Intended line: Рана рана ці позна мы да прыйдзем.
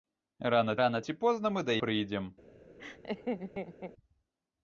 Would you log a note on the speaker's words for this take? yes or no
no